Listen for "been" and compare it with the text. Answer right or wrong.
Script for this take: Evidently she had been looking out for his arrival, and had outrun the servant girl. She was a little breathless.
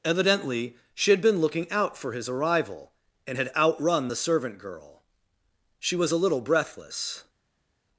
right